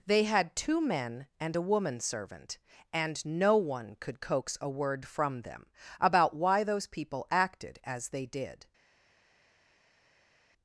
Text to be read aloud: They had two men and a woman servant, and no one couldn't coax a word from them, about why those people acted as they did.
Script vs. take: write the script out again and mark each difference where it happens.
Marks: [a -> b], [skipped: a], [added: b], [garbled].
They had two men and a woman servant, and no one [couldn't -> could] coax a word from them, about why those people acted as they did.